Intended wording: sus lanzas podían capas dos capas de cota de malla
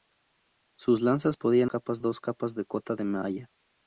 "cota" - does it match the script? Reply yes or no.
yes